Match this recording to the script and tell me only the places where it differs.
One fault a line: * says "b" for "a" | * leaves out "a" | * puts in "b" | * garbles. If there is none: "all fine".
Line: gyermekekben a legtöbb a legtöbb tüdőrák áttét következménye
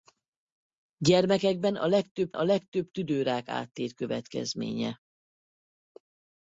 all fine